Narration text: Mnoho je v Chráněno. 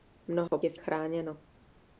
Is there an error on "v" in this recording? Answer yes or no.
no